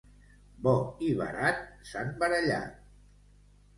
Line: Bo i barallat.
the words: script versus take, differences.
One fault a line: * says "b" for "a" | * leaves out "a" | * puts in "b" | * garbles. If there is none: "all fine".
* puts in "barat s'han"